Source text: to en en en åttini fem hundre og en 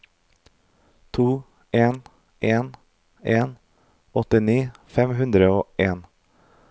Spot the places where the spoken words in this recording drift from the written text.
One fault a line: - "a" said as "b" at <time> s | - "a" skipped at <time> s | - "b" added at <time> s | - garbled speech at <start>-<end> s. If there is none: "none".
none